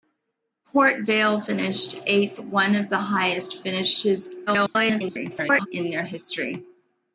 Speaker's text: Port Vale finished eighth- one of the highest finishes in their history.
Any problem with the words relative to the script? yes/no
yes